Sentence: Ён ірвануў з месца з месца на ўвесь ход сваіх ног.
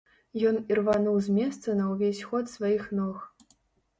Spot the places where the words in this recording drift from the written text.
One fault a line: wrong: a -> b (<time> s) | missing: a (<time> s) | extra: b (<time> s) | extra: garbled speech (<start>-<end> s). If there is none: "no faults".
missing: з месца (1.8 s)